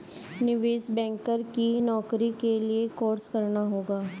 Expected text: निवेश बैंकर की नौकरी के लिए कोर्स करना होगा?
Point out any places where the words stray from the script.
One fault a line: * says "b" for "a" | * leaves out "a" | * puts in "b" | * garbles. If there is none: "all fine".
all fine